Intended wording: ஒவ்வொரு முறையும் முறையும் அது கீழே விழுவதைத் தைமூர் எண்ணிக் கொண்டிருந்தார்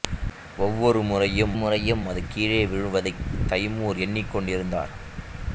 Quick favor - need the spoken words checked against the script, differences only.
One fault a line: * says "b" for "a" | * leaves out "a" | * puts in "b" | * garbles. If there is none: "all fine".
all fine